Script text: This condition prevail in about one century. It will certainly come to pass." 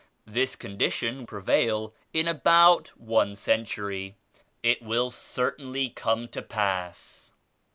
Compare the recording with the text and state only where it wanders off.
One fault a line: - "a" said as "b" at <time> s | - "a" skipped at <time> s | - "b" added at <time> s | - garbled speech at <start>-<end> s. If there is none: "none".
none